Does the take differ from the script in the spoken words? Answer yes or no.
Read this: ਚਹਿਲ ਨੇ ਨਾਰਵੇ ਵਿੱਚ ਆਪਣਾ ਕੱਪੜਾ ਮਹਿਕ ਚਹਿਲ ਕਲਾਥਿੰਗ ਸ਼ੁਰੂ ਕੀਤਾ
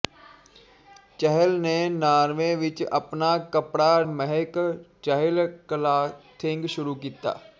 no